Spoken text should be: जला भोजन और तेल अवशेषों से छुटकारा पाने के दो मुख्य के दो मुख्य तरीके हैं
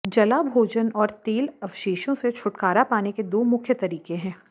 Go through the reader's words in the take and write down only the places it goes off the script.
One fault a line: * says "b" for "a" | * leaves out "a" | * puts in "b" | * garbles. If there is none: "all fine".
* leaves out "के दो मुख्य"